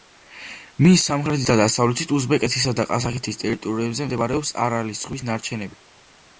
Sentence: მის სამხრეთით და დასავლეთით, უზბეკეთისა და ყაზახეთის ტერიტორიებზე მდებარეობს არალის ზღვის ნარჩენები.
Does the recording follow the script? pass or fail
pass